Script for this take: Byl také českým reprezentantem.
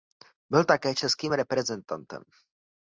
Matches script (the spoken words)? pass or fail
pass